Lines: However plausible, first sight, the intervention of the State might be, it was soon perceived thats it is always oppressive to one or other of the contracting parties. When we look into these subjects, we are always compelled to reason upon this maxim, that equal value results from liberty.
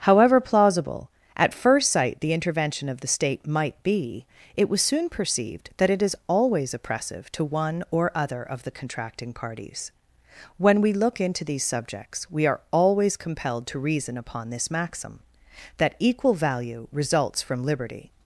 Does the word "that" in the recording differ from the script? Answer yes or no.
no